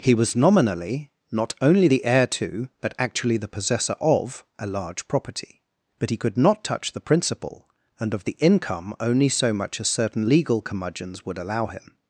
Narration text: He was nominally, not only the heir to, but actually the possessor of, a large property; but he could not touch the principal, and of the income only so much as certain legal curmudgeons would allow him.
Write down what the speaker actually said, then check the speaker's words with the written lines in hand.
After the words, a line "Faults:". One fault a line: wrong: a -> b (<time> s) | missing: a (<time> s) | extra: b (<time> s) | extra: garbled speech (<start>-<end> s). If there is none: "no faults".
He was nominally, not only the heir to, but actually the possessor of, a large property; but he could not touch the principal, and of the income only so much as certain legal curmudgeons would allow him.
Faults:
no faults